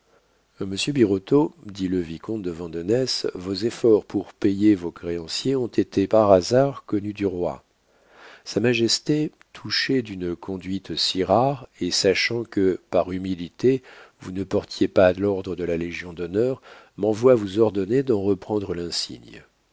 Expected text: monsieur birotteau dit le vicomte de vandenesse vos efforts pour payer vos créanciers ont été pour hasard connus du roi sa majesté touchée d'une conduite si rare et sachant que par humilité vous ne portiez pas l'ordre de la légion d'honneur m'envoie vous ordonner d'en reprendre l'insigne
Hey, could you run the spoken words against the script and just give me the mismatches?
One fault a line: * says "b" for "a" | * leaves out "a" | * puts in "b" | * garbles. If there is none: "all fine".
* says "par" for "pour"